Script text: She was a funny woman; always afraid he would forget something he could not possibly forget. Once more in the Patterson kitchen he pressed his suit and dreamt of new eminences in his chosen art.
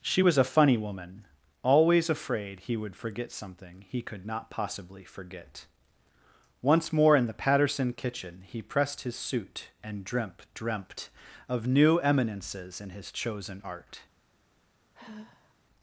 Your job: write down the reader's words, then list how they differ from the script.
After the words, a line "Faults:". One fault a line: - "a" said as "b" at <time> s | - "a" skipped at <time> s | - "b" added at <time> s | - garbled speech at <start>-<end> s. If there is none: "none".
She was a funny woman; always afraid he would forget something he could not possibly forget. Once more in the Patterson kitchen he pressed his suit and dreamt dreamt of new eminences in his chosen art.
Faults:
- "dreamt" added at 10.5 s